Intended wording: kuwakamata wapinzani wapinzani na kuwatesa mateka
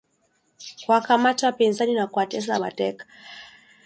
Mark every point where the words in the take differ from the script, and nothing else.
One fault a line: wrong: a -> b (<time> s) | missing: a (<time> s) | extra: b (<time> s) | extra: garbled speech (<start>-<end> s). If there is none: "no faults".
missing: wapinzani (1.9 s)